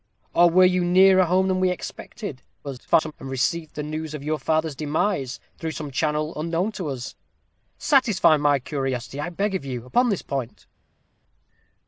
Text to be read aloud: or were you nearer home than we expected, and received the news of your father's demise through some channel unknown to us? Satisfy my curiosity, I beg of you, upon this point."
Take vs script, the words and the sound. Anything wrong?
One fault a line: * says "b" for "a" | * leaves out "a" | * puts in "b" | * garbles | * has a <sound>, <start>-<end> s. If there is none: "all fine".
* garbles